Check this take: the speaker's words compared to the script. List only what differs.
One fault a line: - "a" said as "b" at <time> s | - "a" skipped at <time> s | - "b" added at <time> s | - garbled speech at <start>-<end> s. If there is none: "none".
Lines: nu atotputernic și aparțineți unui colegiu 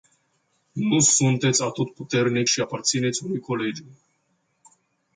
- "sunteți" added at 1.0 s